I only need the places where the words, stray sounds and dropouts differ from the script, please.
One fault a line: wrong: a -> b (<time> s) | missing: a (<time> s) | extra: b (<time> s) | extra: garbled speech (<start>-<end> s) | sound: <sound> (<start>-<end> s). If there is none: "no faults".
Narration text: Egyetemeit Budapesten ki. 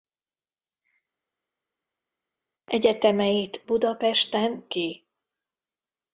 no faults